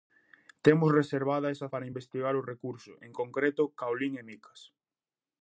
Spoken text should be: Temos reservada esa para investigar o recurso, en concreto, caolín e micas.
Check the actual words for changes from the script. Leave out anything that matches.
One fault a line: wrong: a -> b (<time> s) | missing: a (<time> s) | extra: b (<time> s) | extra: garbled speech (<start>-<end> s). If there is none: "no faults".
no faults